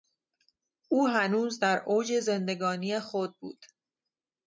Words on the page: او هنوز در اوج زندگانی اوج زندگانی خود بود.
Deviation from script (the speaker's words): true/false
true